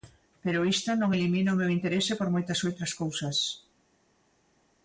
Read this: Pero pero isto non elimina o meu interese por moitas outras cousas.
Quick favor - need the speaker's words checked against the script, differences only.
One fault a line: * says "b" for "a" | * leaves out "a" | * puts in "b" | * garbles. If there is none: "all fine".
* leaves out "pero"